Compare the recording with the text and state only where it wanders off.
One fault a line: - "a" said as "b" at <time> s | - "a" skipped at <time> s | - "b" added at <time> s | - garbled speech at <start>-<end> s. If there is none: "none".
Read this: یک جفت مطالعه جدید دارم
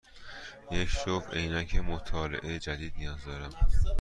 - "عینک" added at 1.3 s
- "نیاز" added at 3.0 s